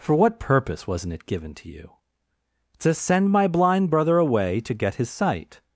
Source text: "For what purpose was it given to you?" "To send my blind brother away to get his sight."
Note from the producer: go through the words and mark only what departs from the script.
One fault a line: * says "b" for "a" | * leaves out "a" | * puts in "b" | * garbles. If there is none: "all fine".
* says "wasn't" for "was"